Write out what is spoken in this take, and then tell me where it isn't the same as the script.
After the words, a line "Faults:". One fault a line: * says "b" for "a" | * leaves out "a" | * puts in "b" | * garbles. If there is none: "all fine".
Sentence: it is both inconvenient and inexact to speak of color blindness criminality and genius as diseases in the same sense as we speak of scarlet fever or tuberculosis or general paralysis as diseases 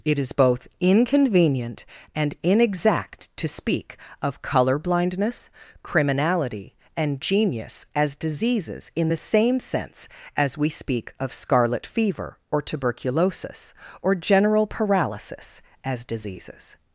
it is both inconvenient and inexact to speak of color blindness criminality and genius as diseases in the same sense as we speak of scarlet fever or tuberculosis or general paralysis as diseases
Faults:
all fine